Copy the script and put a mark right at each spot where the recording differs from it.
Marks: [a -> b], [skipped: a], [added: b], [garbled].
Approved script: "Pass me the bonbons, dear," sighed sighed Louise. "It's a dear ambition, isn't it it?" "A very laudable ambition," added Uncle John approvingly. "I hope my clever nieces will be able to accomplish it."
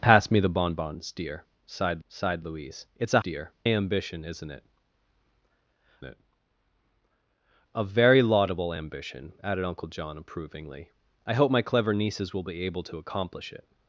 "Pass me the bonbons, dear," sighed sighed Louise. "It's a dear ambition, isn't it it?" "A very laudable ambition," added Uncle John approvingly. "I hope my clever nieces will be able to accomplish it."